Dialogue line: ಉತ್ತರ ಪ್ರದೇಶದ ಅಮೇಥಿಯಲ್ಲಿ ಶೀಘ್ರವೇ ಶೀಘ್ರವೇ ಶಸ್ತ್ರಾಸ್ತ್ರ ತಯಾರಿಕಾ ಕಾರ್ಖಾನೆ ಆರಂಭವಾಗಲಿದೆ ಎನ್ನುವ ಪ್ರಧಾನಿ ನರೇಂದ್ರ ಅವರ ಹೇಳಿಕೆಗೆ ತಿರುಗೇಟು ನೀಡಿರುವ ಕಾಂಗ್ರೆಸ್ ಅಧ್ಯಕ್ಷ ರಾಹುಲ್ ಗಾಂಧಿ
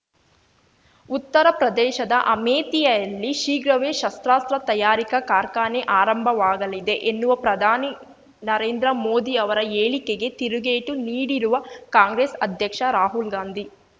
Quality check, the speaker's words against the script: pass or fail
fail